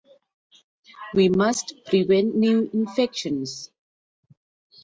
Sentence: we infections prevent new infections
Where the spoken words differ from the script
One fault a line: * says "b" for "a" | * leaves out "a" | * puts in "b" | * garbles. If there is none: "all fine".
* says "must" for "infections"